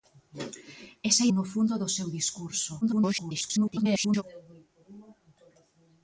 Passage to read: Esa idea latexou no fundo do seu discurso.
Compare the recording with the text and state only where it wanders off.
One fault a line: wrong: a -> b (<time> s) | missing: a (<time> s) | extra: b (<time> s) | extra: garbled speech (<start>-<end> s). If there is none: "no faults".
missing: idea latexou (1.2 s)
extra: garbled speech (2.8-4.2 s)